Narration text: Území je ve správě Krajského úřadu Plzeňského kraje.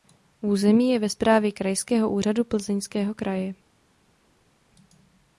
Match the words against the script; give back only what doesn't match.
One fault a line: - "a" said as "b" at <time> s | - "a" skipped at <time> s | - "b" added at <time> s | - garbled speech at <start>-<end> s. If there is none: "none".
none